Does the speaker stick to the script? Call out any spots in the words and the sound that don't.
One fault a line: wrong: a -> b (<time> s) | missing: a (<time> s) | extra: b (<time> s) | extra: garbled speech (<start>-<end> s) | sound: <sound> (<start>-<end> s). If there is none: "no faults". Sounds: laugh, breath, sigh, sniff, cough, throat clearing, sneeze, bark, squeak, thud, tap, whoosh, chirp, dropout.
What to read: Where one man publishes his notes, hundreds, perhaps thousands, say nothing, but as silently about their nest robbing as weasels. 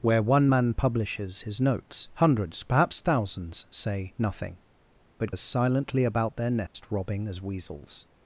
sound: dropout (6.7-6.7 s)